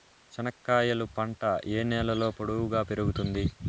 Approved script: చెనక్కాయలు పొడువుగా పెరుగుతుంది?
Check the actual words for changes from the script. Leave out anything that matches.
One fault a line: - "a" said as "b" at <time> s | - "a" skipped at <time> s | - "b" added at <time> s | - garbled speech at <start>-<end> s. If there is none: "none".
- "పంట ఏ నేలలో" added at 1.2 s